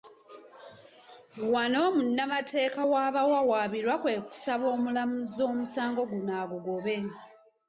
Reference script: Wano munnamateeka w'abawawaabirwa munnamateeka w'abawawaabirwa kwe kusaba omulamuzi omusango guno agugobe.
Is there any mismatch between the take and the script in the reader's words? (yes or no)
yes